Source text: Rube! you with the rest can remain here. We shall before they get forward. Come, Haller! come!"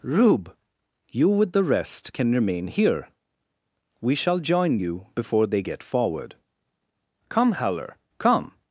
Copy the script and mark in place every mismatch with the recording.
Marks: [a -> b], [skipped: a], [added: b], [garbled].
Rube! you with the rest can remain here. We shall [added: join you] before they get forward. Come, Haller! come!"